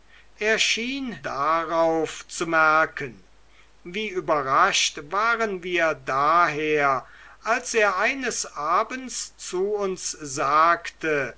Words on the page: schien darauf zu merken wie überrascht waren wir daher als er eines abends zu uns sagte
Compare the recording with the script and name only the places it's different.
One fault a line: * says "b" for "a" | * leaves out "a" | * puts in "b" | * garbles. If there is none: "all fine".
all fine